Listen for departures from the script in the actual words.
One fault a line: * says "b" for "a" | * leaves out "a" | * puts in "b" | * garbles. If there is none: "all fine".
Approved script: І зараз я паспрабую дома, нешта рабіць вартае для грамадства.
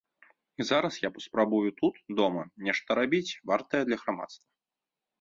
* puts in "тут"